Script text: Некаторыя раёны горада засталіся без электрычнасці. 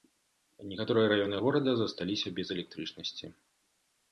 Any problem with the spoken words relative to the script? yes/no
no